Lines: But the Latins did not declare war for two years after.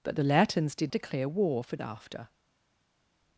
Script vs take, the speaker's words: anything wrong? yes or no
yes